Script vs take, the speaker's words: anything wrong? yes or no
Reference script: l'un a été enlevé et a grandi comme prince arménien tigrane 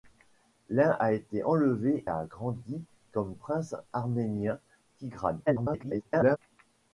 yes